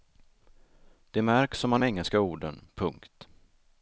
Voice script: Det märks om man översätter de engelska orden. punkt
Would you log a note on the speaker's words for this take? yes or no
yes